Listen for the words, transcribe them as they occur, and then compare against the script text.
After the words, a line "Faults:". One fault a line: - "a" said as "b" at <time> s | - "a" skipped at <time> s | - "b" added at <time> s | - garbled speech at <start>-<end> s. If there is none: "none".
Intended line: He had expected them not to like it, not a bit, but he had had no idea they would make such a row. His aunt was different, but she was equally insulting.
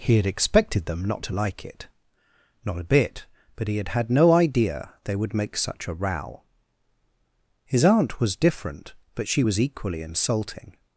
He had expected them not to like it, not a bit, but he had had no idea they would make such a row. His aunt was different, but she was equally insulting.
Faults:
none